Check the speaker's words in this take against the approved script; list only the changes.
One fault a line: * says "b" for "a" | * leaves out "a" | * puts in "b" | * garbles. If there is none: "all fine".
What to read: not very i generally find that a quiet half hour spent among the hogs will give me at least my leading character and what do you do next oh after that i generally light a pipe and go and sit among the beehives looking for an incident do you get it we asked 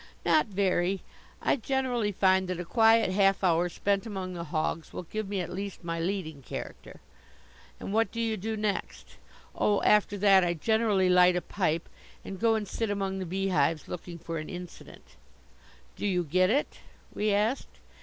all fine